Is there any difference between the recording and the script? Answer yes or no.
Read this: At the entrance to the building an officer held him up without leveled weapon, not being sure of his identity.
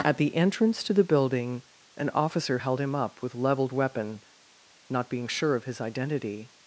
yes